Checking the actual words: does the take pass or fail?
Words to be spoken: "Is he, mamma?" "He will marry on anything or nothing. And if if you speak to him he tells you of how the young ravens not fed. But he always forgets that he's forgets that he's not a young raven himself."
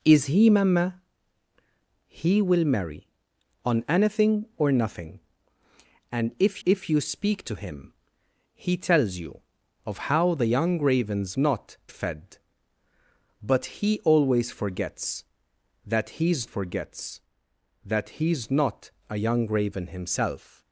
pass